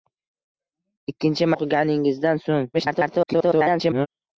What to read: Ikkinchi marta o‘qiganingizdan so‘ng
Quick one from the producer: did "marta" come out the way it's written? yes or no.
no